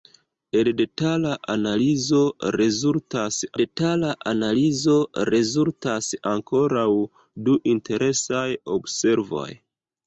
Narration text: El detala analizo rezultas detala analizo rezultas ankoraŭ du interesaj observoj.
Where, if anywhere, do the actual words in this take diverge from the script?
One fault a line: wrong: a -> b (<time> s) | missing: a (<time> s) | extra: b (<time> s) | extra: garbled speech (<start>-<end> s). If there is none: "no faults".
no faults